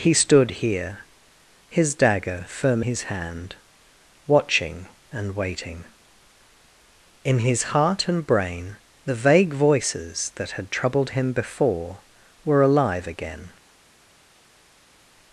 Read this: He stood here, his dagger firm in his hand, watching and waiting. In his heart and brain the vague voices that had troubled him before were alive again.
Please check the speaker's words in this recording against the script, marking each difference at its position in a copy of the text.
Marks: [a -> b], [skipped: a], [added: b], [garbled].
He stood here, his dagger firm [skipped: in] his hand, watching and waiting. In his heart and brain the vague voices that had troubled him before were alive again.